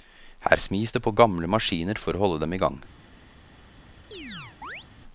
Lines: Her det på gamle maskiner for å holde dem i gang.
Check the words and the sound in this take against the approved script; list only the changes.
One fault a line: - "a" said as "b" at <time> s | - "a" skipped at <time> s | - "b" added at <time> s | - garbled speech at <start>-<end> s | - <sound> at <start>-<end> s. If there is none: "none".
- "smis" added at 0.6 s
- chirp at 4.1-4.9 s